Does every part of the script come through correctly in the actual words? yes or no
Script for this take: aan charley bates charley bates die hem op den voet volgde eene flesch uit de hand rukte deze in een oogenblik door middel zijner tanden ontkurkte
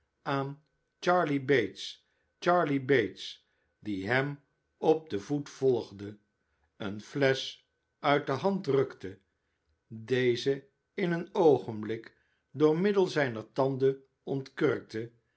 yes